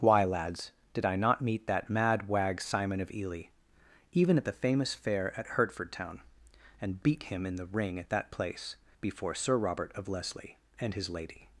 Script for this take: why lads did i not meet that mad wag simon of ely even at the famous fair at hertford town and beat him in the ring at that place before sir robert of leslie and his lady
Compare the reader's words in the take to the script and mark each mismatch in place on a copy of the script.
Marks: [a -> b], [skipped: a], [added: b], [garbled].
why lads did i not meet that mad wag simon of ely even at the famous fair at hertford town and beat him in the ring at that place before sir robert of leslie and his lady